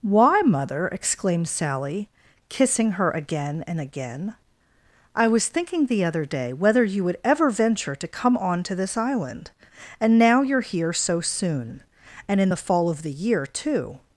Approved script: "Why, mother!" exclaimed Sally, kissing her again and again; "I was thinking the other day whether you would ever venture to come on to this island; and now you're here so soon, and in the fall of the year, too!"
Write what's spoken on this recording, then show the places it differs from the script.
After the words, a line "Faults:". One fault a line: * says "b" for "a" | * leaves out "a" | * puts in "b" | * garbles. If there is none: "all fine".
"Why, mother!" exclaimed Sally, kissing her again and again; "I was thinking the other day whether you would ever venture to come on to this island; and now you're here so soon, and in the fall of the year, too!"
Faults:
all fine